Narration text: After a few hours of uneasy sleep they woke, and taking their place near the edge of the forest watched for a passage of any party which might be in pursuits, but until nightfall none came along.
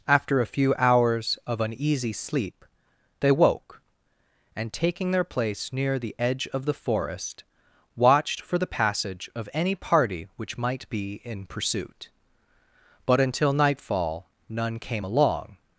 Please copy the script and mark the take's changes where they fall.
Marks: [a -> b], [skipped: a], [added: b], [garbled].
After a few hours of uneasy sleep they woke, and taking their place near the edge of the forest watched for [a -> the] passage of any party which might be in [pursuits, -> pursuit] but until nightfall none came along.